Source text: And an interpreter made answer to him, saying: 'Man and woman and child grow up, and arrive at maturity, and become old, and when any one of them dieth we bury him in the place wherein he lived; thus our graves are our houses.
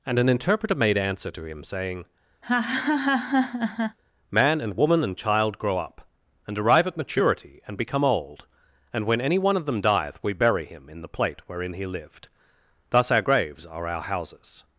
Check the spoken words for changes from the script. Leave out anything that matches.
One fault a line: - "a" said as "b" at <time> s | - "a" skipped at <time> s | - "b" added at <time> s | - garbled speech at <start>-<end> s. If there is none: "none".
- "place" said as "plate" at 11.1 s